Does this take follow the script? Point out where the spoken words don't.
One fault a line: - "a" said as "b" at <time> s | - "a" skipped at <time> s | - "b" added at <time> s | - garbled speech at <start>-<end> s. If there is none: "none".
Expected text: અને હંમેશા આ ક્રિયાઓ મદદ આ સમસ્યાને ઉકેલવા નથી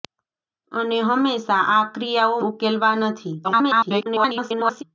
- "મદદ આ સમસ્યાને" skipped at 2.4 s
- garbled speech at 3.4-4.8 s